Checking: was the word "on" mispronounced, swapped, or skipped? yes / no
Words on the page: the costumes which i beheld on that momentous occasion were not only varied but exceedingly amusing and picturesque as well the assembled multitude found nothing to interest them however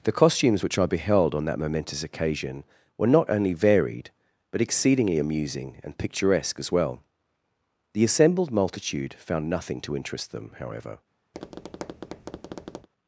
no